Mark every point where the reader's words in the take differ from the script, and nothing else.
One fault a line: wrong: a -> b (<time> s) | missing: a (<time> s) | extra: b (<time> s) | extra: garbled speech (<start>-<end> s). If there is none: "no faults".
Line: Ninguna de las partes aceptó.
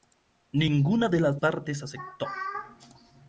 no faults